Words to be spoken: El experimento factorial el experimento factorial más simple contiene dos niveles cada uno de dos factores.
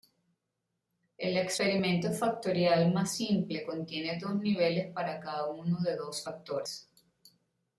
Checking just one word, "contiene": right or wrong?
right